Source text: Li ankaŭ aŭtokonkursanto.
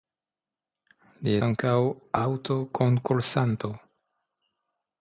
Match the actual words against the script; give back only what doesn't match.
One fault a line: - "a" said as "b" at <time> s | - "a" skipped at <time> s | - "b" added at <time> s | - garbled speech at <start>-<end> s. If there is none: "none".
none